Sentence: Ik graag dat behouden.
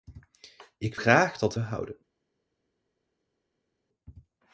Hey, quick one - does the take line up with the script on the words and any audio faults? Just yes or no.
yes